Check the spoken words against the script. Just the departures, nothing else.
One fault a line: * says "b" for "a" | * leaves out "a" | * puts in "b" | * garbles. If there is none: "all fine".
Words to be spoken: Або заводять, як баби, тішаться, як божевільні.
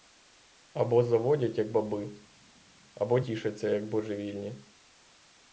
* puts in "або"